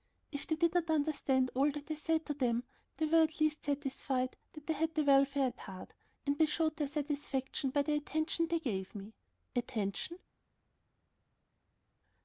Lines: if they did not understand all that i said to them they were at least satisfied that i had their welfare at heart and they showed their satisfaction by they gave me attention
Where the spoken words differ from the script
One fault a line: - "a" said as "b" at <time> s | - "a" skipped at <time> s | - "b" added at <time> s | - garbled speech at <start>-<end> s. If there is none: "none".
- "the attention" added at 7.8 s